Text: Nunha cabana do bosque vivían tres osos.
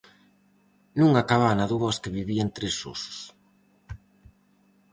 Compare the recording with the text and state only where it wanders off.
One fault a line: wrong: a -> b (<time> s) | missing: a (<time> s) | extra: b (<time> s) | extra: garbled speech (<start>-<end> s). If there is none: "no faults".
no faults